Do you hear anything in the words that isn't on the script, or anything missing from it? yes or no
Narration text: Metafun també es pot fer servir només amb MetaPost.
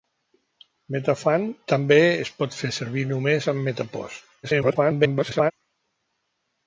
yes